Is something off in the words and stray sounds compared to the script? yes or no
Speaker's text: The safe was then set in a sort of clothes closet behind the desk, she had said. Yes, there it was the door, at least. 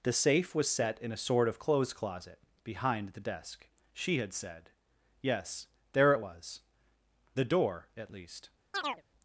yes